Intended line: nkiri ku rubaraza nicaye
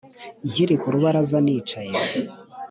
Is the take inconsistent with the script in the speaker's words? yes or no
no